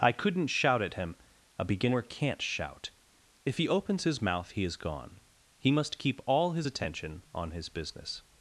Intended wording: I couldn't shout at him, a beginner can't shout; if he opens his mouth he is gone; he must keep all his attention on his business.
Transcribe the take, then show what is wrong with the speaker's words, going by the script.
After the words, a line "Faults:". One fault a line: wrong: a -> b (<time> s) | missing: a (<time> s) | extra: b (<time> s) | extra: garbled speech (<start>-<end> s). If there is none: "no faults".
I couldn't shout at him, a beginner can't shout; if he opens his mouth he is gone; he must keep all his attention on his business.
Faults:
no faults